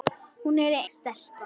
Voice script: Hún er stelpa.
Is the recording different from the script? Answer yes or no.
no